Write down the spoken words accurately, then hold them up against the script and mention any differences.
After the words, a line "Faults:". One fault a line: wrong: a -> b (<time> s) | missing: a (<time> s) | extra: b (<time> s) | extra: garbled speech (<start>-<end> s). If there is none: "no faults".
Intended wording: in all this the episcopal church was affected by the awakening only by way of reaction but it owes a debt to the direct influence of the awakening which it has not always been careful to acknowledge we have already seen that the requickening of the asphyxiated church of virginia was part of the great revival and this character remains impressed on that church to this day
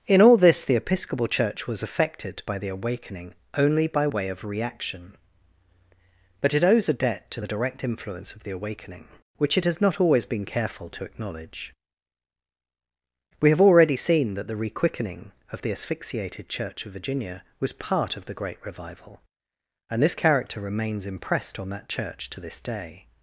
in all this the episcopal church was affected by the awakening only by way of reaction but it owes a debt to the direct influence of the awakening which it has not always been careful to acknowledge we have already seen that the requickening of the asphyxiated church of virginia was part of the great revival and this character remains impressed on that church to this day
Faults:
no faults